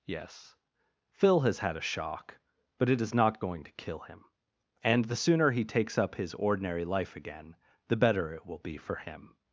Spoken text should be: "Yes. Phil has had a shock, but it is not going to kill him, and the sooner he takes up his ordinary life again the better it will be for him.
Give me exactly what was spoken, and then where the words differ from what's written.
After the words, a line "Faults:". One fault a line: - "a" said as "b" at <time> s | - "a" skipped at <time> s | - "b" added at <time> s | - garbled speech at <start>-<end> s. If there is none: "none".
"Yes. Phil has had a shock, but it is not going to kill him, and the sooner he takes up his ordinary life again the better it will be for him.
Faults:
none